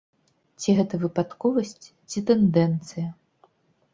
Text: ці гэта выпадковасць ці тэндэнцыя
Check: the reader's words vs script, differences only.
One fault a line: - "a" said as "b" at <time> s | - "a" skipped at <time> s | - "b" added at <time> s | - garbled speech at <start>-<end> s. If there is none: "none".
none